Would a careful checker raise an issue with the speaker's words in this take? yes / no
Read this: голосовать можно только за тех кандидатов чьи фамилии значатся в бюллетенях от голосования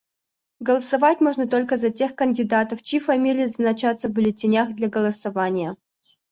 yes